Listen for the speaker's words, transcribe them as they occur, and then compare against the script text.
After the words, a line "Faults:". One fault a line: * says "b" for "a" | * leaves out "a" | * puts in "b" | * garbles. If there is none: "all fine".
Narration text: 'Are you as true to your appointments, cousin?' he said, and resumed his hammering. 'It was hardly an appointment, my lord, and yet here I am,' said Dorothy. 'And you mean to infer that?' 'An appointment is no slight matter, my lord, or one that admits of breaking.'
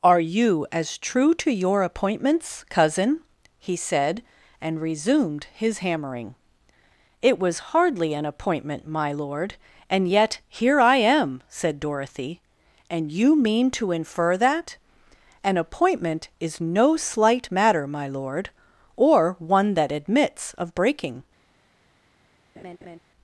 'Are you as true to your appointments, cousin?' he said, and resumed his hammering. 'It was hardly an appointment, my lord, and yet here I am,' said Dorothy. 'And you mean to infer that?' 'An appointment is no slight matter, my lord, or one that admits of breaking.'
Faults:
all fine